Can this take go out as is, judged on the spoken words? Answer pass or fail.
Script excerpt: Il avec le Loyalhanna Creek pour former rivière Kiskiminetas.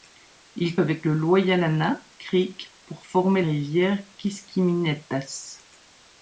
pass